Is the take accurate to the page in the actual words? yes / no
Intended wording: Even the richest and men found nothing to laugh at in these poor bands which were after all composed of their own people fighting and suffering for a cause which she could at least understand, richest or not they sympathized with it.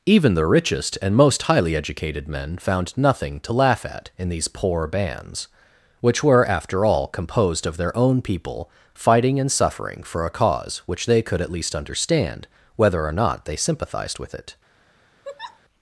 no